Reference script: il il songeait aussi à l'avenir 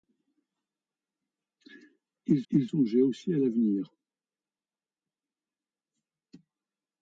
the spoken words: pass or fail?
pass